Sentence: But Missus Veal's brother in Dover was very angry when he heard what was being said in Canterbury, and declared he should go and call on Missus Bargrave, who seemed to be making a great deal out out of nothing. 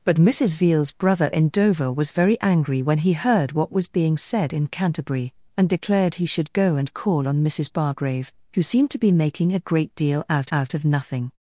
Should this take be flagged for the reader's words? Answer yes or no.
no